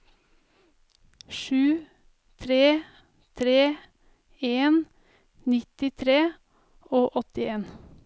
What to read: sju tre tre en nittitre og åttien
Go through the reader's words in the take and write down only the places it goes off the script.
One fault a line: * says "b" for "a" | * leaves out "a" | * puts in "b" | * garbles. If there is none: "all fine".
all fine